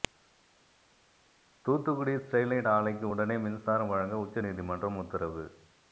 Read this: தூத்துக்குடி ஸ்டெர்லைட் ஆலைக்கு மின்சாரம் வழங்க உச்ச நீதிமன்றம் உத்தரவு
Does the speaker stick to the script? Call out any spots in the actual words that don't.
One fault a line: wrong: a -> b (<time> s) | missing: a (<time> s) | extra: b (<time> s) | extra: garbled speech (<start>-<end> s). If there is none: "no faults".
extra: உடனே (3.1 s)